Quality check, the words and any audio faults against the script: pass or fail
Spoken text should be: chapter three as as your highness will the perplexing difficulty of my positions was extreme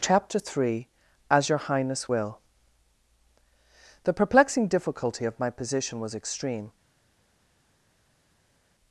fail